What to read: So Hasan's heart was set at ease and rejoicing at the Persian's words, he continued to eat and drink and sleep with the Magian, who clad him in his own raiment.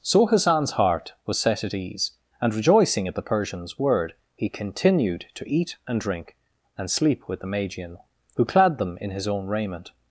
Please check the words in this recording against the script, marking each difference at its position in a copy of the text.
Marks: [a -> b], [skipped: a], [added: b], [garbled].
So Hasan's heart was set at ease and rejoicing at the Persian's [words, -> word] he continued to eat and drink and sleep with the Magian, who clad [him -> them] in his own raiment.